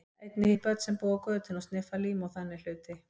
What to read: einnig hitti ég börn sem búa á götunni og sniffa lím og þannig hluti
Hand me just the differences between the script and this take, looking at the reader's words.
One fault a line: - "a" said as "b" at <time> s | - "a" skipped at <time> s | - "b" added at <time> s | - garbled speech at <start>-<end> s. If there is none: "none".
- "hitti" skipped at 0.5 s